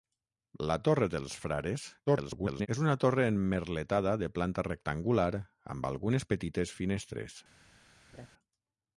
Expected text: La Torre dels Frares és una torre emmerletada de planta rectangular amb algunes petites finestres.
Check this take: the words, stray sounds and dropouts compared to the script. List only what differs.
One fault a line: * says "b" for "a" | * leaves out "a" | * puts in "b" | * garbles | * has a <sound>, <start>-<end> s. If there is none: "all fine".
* garbles
* has a laugh, 8.1-8.3 s